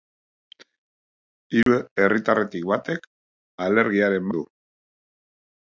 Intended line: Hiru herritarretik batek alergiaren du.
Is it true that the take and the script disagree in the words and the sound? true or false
true